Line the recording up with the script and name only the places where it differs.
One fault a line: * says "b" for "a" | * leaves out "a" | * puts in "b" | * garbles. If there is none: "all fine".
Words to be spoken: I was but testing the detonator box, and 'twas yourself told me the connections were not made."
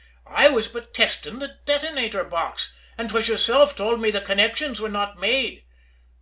all fine